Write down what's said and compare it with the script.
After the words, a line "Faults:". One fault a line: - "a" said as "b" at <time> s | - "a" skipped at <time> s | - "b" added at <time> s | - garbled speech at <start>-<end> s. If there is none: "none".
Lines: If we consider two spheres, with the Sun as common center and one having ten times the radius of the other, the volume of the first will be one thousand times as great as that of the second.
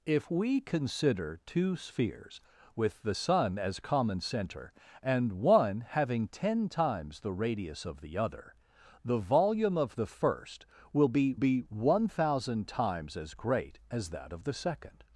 If we consider two spheres, with the Sun as common center and one having ten times the radius of the other, the volume of the first will be be one thousand times as great as that of the second.
Faults:
- "be" added at 11.3 s